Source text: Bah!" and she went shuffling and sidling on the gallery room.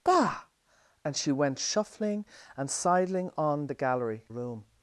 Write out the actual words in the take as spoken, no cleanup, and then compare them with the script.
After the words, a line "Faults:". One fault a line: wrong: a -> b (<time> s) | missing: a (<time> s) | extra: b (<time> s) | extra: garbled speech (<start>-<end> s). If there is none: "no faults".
Bah!" and she went shuffling and sidling on the gallery room.
Faults:
no faults